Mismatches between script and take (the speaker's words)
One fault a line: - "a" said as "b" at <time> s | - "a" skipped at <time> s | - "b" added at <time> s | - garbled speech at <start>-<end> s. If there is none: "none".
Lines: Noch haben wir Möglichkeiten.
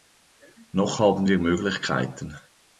none